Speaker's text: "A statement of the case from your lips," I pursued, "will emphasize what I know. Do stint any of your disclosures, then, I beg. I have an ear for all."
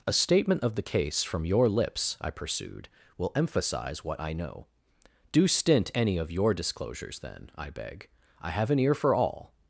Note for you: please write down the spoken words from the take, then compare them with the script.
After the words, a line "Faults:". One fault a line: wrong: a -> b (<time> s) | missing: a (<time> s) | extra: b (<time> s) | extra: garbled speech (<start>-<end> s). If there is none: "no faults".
"A statement of the case from your lips," I pursued, "will emphasize what I know. Do stint any of your disclosures, then, I beg. I have an ear for all."
Faults:
no faults